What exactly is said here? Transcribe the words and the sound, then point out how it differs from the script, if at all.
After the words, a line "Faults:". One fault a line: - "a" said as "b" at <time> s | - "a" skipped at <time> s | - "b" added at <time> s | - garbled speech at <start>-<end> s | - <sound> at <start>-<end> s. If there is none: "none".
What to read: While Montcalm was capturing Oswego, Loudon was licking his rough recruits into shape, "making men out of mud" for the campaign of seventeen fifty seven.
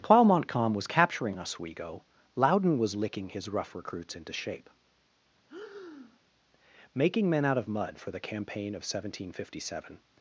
While Montcalm was capturing Oswego, Loudon was licking his rough recruits into shape, "making men out of mud" for the campaign of seventeen fifty seven.
Faults:
- breath at 5.5-6.2 s